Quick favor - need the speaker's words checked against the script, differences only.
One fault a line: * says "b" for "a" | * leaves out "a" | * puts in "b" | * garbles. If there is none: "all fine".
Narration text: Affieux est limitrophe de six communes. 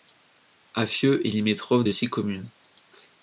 all fine